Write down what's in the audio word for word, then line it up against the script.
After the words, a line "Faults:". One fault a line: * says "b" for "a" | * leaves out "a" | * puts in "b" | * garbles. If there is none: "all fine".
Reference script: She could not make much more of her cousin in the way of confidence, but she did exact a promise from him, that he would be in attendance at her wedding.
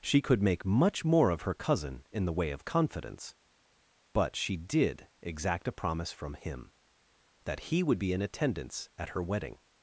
She could make much more of her cousin in the way of confidence, but she did exact a promise from him, that he would be in attendance at her wedding.
Faults:
* leaves out "not"